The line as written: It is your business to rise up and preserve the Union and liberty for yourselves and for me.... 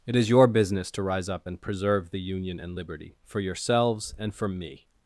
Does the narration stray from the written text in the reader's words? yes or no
no